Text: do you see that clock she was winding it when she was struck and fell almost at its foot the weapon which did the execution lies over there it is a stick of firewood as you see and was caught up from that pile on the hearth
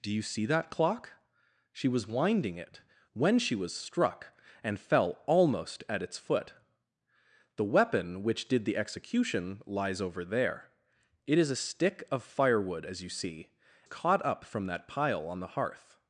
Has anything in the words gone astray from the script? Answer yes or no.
yes